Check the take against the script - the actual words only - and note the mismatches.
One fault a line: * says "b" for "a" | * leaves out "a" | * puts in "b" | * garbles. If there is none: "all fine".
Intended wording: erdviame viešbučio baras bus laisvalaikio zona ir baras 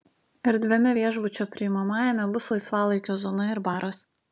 * says "priimamajame" for "baras"